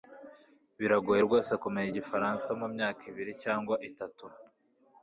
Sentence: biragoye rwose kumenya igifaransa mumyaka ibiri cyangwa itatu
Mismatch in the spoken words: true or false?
false